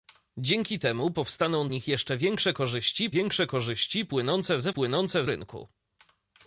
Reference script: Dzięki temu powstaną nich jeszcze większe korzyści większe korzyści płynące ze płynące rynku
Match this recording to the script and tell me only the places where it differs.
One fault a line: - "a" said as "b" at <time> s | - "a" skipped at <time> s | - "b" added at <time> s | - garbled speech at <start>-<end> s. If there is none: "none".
none